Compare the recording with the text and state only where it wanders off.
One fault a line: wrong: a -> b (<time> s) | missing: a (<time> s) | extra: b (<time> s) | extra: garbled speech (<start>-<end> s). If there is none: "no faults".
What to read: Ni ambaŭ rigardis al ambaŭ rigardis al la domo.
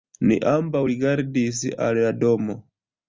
missing: ambaŭ rigardis al (2.0 s)